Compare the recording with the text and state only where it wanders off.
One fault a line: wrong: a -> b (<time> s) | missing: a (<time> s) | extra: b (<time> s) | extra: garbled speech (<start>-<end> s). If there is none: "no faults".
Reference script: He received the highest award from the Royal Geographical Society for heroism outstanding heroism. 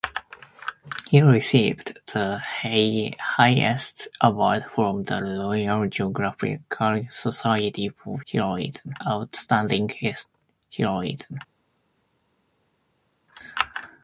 no faults